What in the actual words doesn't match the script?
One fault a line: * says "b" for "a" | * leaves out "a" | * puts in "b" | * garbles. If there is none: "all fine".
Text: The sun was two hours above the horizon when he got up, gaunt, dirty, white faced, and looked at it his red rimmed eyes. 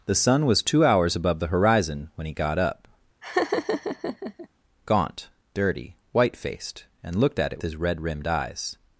all fine